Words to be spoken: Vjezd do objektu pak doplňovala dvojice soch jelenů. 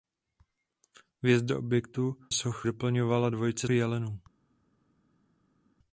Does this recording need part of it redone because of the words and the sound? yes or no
yes